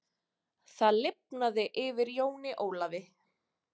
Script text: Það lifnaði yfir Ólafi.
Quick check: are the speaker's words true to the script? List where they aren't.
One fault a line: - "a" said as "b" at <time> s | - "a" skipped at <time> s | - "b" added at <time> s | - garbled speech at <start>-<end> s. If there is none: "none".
- "Jóni" added at 2.2 s